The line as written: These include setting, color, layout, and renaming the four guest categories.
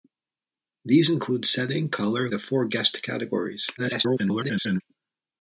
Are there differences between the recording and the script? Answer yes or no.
yes